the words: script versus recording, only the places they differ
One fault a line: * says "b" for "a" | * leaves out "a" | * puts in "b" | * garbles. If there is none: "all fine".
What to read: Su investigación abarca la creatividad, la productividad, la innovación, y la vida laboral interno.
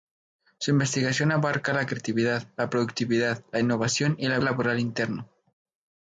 * leaves out "vida"